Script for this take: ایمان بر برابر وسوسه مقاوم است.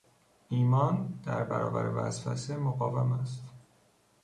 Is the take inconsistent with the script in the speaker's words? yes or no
yes